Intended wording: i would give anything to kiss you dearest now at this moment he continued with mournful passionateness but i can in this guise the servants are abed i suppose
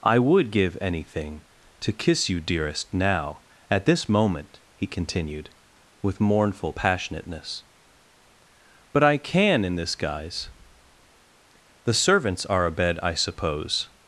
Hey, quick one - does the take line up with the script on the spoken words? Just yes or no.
yes